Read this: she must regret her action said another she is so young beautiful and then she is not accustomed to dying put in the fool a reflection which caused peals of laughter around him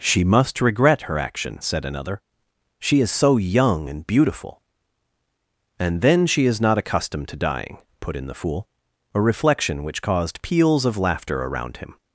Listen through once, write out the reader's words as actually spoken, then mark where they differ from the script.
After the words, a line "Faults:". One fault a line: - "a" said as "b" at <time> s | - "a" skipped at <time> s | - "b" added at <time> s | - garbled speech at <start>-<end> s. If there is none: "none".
she must regret her action said another she is so young and beautiful and then she is not accustomed to dying put in the fool a reflection which caused peals of laughter around him
Faults:
- "and" added at 3.9 s